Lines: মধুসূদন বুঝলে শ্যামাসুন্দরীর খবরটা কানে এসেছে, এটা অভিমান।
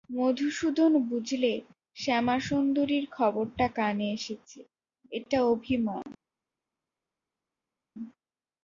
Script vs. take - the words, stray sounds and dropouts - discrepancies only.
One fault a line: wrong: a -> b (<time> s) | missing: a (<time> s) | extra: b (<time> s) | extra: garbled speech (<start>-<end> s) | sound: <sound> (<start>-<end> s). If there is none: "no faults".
no faults